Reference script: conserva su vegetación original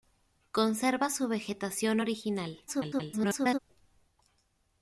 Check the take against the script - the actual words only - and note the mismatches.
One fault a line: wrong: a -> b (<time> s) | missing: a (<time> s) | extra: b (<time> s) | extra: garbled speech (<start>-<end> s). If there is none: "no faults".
extra: garbled speech (2.7-3.6 s)